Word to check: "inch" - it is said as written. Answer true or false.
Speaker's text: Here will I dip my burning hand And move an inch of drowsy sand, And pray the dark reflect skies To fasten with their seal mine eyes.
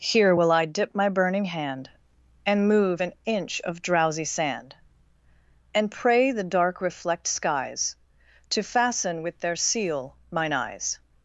true